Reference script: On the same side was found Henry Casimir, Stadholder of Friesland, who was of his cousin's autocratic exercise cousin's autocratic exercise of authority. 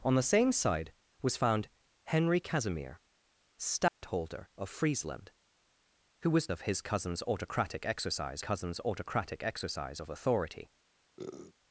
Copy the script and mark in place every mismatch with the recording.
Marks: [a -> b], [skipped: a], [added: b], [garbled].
On the same side was found Henry Casimir, Stadholder of Friesland, who was of his cousin's autocratic exercise cousin's autocratic exercise of authority.